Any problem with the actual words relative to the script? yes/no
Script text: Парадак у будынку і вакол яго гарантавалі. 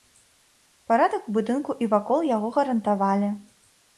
no